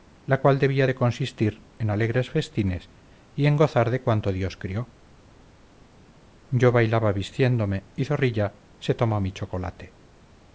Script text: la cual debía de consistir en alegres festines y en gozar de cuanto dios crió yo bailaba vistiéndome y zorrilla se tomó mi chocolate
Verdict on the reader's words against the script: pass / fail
pass